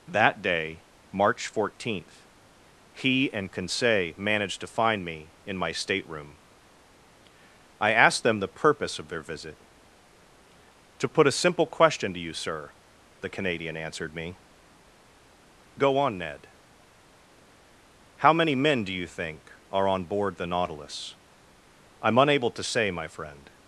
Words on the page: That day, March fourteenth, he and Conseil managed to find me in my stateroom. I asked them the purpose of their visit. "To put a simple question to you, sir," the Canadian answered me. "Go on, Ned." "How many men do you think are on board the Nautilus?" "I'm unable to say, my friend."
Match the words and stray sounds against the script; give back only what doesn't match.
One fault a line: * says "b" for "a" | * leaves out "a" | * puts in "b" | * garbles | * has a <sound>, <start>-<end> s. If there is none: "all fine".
all fine